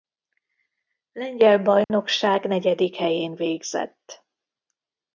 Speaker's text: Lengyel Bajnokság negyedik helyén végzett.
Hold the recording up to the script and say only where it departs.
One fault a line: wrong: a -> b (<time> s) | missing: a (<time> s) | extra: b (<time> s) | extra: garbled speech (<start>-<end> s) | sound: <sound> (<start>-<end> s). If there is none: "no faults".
sound: dropout (1.8-1.9 s)